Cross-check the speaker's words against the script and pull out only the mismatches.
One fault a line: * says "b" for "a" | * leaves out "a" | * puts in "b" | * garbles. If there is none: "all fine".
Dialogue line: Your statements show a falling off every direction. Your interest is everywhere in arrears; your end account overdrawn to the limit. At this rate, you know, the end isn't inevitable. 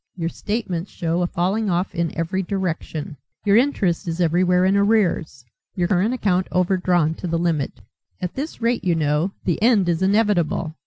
* puts in "in"
* says "current" for "end"
* says "is" for "isn't"